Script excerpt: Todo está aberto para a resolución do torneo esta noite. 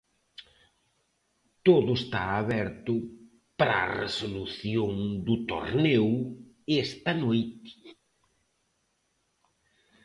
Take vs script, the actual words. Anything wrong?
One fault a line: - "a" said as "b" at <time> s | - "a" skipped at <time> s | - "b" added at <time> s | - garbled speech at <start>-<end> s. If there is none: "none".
none